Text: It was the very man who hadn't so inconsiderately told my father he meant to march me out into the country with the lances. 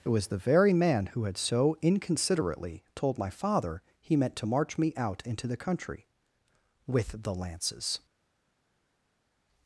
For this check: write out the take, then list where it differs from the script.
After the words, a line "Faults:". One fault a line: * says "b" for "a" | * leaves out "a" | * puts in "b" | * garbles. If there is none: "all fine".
It was the very man who had so inconsiderately told my father he meant to march me out into the country with the lances.
Faults:
* says "had" for "hadn't"